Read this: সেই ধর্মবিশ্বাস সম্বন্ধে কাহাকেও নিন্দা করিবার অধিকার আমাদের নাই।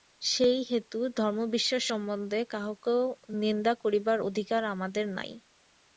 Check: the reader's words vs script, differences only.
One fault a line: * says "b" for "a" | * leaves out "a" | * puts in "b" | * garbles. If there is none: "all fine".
* puts in "হেতু"